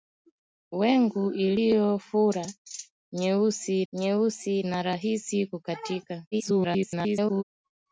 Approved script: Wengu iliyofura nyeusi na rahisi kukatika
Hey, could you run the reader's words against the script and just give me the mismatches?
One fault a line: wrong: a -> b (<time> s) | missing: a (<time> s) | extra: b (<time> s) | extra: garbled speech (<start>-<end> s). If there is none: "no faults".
extra: nyeusi (3.9 s)
extra: garbled speech (6.3-7.4 s)